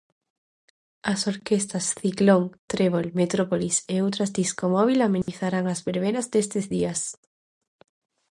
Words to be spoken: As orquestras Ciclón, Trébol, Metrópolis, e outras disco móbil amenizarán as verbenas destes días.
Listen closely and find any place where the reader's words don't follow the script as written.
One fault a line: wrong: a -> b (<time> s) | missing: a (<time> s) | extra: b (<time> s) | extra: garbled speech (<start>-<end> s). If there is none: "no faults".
no faults